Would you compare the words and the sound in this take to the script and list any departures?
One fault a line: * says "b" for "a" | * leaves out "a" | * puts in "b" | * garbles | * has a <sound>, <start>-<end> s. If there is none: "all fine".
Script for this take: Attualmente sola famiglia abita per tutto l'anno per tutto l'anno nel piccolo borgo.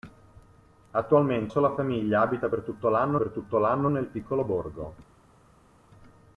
all fine